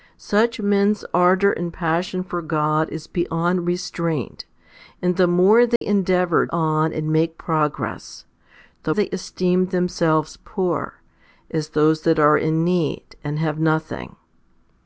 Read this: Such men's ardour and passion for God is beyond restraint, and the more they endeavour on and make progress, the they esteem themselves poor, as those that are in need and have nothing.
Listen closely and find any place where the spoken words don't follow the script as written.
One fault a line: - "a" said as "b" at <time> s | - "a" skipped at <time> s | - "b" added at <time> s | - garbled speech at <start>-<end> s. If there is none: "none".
none